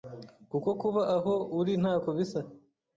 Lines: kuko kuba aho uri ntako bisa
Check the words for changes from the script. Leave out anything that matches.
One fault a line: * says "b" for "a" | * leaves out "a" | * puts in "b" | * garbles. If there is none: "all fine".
all fine